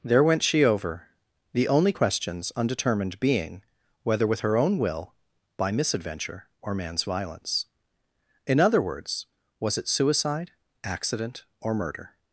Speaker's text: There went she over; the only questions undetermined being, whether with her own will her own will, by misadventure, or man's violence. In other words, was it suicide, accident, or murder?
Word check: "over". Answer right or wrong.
right